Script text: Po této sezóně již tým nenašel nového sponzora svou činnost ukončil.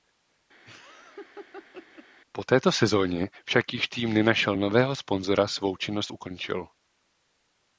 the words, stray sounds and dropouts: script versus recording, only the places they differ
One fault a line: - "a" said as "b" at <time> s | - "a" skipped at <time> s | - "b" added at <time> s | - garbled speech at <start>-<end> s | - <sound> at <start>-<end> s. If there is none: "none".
- laugh at 0.6-2.1 s
- "však" added at 3.4 s